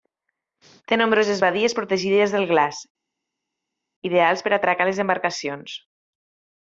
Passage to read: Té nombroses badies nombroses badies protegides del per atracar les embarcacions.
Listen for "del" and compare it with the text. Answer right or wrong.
wrong